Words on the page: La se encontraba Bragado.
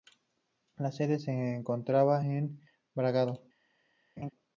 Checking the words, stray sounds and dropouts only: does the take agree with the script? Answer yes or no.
no